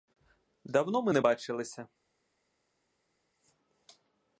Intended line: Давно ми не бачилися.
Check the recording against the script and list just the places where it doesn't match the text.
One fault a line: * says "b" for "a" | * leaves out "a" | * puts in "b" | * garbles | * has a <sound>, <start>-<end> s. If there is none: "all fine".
all fine